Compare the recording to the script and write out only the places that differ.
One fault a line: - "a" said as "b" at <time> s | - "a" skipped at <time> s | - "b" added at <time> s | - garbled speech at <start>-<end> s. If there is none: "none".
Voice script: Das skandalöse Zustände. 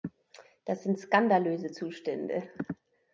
- "sind" added at 0.8 s